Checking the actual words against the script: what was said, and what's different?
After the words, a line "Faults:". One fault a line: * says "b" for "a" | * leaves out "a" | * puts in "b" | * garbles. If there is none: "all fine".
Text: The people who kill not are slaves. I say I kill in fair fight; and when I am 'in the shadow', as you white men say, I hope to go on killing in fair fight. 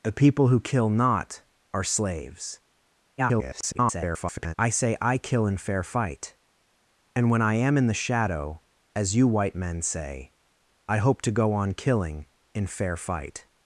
The people who kill not are slaves. [garbled] I say I kill in fair fight; and when I am 'in the shadow', as you white men say, I hope to go on killing in fair fight.
Faults:
* garbles